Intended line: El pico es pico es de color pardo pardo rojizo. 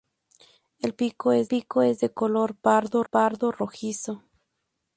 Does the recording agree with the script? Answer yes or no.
yes